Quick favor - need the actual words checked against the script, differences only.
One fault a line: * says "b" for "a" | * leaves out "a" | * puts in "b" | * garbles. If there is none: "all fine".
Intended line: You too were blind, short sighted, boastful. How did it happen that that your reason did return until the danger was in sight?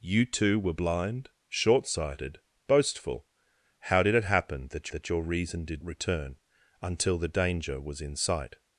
all fine